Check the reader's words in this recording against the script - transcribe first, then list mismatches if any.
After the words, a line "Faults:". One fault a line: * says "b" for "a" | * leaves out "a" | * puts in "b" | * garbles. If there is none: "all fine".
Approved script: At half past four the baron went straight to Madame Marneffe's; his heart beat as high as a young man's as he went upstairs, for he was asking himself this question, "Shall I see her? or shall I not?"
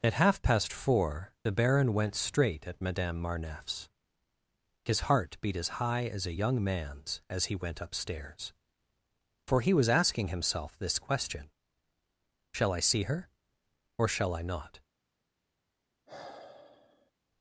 At half past four the baron went straight at Madame Marneffe's; his heart beat as high as a young man's as he went upstairs, for he was asking himself this question, "Shall I see her? or shall I not?"
Faults:
* says "at" for "to"